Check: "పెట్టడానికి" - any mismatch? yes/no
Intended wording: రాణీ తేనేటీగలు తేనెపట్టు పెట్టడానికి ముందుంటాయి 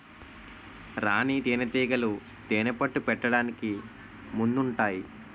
no